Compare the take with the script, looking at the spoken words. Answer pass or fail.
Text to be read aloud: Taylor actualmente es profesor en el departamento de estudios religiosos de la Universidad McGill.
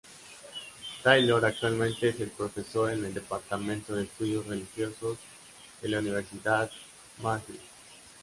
pass